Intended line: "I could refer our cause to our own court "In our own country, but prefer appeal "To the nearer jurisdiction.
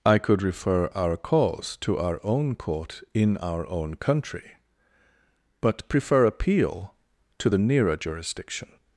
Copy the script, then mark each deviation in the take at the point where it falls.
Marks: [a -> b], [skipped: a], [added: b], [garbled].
"I could refer our cause to our own court "In our own country, but prefer appeal "To the nearer jurisdiction.